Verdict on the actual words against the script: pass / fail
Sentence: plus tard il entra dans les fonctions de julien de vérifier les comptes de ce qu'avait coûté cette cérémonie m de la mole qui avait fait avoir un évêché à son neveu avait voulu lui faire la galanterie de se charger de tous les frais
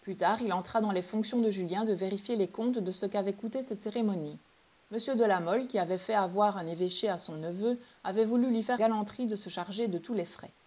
fail